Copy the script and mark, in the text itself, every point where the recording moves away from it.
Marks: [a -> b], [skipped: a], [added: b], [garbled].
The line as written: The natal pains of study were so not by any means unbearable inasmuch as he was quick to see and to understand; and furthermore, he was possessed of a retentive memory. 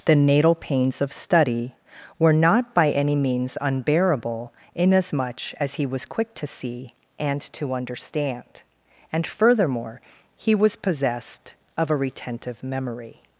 The natal pains of study were [skipped: so] not by any means unbearable inasmuch as he was quick to see and to understand; and furthermore, he was possessed of a retentive memory.